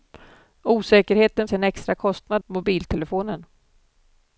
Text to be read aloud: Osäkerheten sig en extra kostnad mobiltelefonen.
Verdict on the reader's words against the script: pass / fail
pass